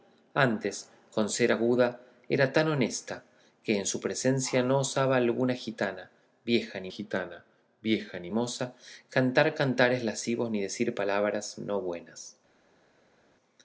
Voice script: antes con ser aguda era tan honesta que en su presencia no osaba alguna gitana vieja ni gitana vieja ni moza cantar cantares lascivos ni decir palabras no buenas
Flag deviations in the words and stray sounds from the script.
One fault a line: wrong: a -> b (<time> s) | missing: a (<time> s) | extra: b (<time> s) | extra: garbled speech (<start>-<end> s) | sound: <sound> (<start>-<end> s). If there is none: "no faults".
no faults